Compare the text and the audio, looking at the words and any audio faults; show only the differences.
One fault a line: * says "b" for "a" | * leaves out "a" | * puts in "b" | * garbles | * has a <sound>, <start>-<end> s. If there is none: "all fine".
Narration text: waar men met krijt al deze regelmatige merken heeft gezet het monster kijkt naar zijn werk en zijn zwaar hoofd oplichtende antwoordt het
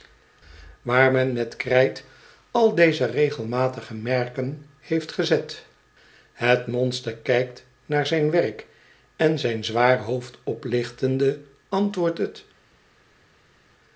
all fine